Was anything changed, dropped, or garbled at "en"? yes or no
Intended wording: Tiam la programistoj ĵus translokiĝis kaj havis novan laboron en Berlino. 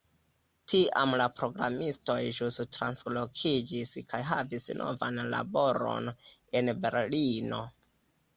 no